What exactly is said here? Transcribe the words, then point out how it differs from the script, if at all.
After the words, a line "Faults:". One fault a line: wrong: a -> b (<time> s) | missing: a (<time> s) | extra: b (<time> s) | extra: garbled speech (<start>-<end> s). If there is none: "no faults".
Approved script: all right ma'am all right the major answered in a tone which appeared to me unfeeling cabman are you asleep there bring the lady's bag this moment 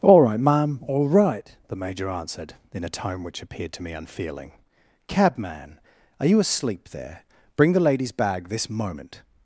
all right ma'am all right the major answered in a tone which appeared to me unfeeling cabman are you asleep there bring the lady's bag this moment
Faults:
no faults